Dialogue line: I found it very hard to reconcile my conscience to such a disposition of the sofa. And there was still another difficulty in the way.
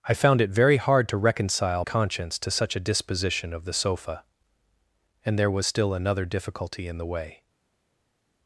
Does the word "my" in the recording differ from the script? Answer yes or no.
yes